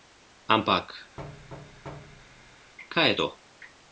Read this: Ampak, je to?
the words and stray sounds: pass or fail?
fail